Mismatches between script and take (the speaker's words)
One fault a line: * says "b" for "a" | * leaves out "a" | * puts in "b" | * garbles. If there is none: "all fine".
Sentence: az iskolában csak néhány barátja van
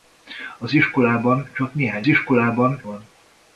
* says "iskolában" for "barátja"